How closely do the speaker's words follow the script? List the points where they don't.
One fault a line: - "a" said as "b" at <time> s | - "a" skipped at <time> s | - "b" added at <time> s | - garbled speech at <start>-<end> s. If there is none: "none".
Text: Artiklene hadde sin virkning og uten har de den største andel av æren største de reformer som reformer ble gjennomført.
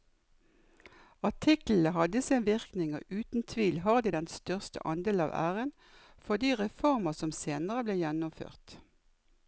- "tvil" added at 3.5 s
- "største" said as "for" at 6.3 s
- "reformer" said as "senere" at 7.4 s